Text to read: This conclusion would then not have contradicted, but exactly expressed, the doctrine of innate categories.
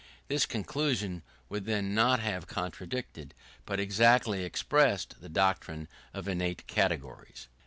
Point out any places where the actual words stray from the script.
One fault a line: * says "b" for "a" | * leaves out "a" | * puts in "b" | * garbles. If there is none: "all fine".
all fine